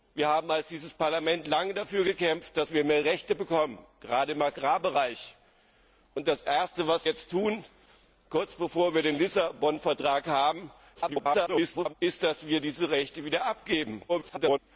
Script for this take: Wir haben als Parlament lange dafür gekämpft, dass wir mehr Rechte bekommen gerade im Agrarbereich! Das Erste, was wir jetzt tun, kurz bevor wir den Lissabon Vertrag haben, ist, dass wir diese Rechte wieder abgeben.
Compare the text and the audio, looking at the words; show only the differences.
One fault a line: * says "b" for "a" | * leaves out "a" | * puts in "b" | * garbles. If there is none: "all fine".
* leaves out "wir"
* garbles
* garbles